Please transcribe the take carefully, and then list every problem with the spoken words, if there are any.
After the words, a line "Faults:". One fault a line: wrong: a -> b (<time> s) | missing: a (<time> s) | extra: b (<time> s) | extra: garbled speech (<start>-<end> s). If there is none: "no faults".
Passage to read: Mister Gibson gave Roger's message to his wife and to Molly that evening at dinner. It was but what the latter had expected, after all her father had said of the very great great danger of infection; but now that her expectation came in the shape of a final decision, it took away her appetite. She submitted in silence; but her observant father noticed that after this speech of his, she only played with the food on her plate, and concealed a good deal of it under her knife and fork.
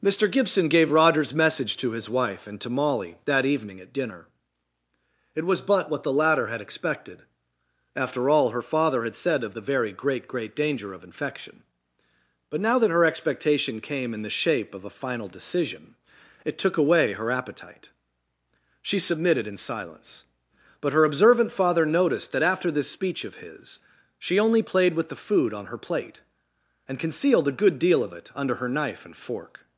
Mister Gibson gave Roger's message to his wife and to Molly that evening at dinner. It was but what the latter had expected, after all her father had said of the very great great danger of infection; but now that her expectation came in the shape of a final decision, it took away her appetite. She submitted in silence; but her observant father noticed that after this speech of his, she only played with the food on her plate, and concealed a good deal of it under her knife and fork.
Faults:
no faults